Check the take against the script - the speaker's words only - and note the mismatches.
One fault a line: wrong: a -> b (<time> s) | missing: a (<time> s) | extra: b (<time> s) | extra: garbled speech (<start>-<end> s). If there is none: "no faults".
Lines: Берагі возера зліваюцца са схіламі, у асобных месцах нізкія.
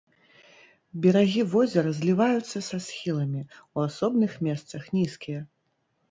no faults